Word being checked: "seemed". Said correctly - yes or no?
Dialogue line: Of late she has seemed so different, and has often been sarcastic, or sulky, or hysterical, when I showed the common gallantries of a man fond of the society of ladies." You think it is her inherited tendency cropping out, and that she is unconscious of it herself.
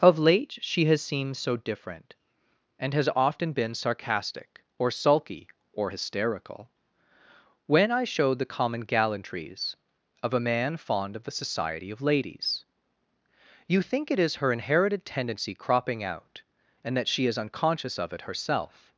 yes